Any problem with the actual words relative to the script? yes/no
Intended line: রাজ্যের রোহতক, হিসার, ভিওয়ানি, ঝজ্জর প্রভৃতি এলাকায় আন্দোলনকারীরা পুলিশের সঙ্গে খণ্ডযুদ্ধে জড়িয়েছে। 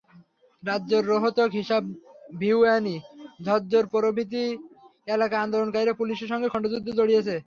no